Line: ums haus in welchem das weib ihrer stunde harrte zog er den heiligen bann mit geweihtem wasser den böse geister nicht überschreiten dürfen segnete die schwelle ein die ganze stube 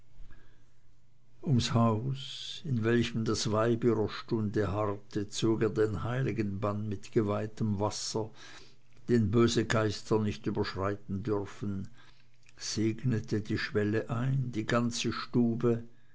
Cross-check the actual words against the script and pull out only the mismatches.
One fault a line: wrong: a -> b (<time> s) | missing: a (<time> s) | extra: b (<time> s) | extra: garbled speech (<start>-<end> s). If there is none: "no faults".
no faults